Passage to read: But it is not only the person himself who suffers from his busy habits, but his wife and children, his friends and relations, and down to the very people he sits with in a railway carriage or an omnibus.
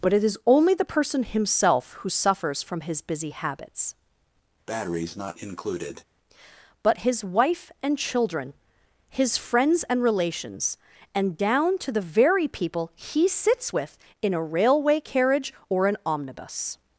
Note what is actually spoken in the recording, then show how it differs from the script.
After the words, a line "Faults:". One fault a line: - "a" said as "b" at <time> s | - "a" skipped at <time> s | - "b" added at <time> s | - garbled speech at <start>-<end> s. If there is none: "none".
But it is only the person himself who suffers from his busy habits, but his wife and children, his friends and relations, and down to the very people he sits with in a railway carriage or an omnibus.
Faults:
- "not" skipped at 0.4 s